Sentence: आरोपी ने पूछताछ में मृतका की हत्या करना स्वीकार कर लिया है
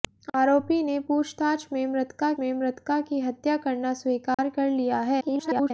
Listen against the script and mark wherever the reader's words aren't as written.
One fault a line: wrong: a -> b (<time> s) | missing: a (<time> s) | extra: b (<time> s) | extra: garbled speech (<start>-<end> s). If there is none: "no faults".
extra: में मृतका (2.4 s)
extra: garbled speech (5.2-5.7 s)